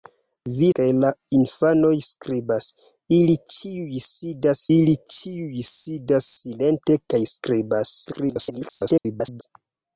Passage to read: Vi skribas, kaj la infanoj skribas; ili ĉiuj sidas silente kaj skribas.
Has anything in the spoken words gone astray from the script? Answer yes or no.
yes